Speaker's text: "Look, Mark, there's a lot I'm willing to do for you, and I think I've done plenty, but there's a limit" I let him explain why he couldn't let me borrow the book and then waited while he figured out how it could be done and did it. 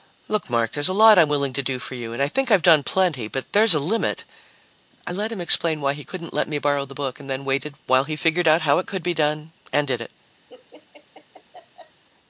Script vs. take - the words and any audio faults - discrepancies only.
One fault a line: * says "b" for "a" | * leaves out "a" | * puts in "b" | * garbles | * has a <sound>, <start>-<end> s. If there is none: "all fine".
* has a laugh, 10.5-12.0 s